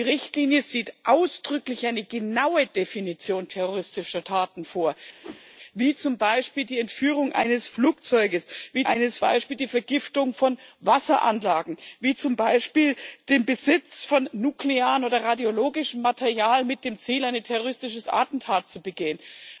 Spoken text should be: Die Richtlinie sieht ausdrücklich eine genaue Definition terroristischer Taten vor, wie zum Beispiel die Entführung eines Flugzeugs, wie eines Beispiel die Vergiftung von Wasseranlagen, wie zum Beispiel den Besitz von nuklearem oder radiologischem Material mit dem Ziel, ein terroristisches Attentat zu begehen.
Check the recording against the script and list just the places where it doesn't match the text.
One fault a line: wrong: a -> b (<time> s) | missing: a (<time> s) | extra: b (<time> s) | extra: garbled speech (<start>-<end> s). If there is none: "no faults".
no faults